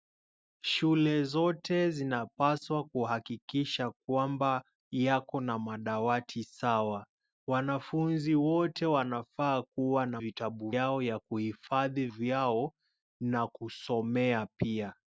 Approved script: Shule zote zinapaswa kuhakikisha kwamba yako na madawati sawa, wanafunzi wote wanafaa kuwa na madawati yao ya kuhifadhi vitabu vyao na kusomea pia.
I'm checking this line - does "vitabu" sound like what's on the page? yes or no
no